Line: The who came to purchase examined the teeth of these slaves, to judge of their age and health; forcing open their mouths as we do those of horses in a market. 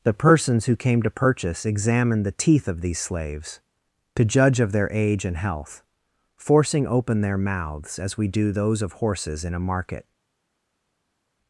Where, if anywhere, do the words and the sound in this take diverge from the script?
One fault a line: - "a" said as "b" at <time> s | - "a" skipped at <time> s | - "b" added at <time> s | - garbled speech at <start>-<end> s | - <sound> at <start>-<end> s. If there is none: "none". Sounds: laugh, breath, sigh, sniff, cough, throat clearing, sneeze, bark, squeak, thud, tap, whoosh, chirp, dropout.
- "persons" added at 0.1 s